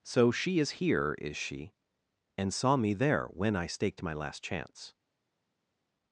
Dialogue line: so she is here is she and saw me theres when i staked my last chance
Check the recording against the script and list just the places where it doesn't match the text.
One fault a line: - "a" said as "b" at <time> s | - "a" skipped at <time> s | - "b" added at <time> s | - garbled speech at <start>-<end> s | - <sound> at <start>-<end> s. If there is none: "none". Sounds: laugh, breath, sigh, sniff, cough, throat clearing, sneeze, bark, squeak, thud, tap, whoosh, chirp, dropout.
- "theres" said as "there" at 2.9 s